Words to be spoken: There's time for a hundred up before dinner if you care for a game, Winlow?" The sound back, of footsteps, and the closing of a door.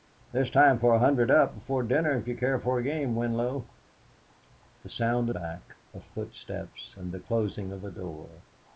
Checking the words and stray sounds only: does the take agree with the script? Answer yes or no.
yes